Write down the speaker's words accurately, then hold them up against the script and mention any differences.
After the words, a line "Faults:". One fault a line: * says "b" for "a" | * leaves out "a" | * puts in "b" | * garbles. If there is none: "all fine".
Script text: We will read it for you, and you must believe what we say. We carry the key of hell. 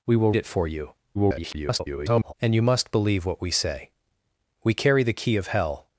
We will it for you, [garbled] and you must believe what we say. We carry the key of hell.
Faults:
* leaves out "read"
* garbles